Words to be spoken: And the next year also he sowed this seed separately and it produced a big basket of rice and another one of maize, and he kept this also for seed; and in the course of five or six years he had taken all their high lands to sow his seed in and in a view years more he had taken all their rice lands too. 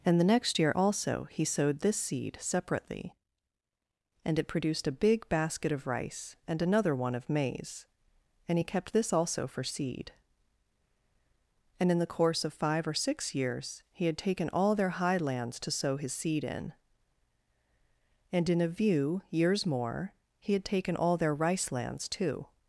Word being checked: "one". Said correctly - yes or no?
yes